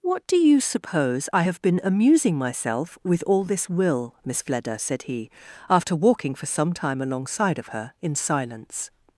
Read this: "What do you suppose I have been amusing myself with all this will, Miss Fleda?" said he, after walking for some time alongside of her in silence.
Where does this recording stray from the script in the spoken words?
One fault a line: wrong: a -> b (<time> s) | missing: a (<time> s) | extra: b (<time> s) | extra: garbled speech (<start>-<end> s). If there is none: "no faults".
no faults